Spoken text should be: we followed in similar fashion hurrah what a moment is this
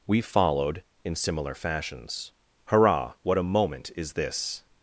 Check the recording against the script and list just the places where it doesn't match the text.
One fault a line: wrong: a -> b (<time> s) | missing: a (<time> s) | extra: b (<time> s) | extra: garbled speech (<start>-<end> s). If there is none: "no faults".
wrong: fashion -> fashions (1.6 s)